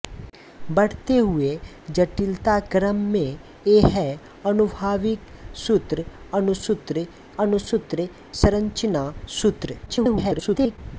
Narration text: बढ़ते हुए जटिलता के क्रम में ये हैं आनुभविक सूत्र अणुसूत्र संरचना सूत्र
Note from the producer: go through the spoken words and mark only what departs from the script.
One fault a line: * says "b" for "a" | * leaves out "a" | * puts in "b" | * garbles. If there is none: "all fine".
* leaves out "के"
* puts in "अणुसूत्र"
* garbles